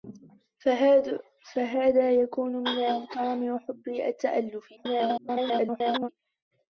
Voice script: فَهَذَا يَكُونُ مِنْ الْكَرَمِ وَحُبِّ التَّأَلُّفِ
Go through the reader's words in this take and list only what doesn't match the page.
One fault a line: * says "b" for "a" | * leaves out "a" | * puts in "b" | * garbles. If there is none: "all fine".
* garbles